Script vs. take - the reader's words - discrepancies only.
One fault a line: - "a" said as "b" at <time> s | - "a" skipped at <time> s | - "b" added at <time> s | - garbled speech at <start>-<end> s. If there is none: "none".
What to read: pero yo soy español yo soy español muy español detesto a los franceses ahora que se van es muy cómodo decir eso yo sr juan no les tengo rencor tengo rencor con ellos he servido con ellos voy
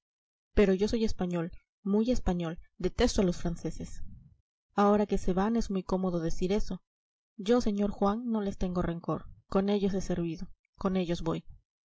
- "yo soy español" skipped at 1.5 s
- "tengo rencor" skipped at 9.3 s